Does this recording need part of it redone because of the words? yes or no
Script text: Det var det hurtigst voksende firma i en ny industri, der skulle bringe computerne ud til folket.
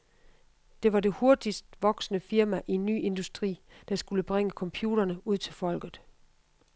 no